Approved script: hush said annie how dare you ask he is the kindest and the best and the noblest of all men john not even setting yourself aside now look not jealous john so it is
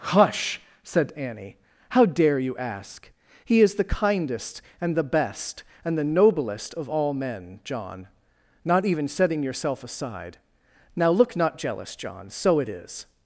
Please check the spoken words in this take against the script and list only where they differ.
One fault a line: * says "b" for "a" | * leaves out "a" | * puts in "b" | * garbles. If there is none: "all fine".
all fine